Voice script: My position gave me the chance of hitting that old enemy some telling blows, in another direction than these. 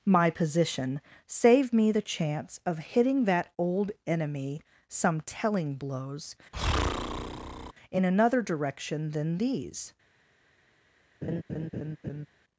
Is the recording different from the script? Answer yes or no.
yes